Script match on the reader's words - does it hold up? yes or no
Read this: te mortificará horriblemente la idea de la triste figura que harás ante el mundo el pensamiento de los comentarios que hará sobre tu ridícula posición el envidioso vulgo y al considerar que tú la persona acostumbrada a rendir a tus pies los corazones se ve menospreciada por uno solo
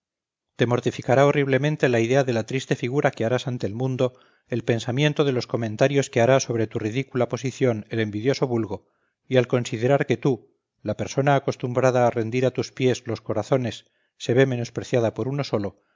yes